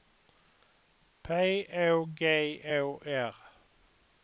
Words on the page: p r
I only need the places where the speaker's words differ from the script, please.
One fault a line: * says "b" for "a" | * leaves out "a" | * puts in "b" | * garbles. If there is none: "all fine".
* puts in "å g å"